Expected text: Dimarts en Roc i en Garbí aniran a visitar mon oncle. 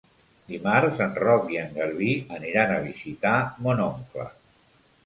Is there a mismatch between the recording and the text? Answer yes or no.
no